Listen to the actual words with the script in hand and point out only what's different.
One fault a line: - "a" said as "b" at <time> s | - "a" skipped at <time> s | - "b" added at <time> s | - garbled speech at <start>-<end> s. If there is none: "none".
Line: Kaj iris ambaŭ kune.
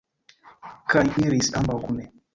none